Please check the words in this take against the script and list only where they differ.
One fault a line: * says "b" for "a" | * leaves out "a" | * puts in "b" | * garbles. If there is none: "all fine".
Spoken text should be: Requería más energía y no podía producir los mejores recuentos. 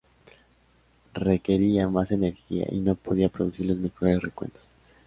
all fine